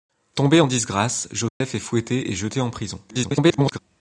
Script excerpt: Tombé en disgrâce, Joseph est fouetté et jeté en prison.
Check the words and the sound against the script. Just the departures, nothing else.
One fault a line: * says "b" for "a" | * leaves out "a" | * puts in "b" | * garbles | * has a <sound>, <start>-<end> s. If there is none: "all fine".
* has a dropout, 1.5-1.6 s
* garbles